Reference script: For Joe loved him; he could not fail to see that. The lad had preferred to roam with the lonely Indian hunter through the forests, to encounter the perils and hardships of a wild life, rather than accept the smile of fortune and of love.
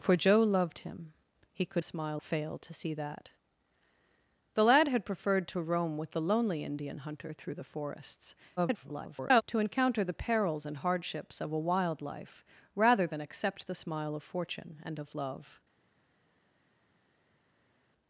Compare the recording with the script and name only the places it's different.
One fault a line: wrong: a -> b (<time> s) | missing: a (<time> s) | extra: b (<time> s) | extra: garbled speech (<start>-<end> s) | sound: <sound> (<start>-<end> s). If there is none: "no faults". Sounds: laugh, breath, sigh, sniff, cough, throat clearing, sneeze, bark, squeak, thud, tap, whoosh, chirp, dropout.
wrong: not -> smile (1.8 s)
extra: garbled speech (8.6-9.4 s)